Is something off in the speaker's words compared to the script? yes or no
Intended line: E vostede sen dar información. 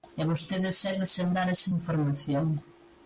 yes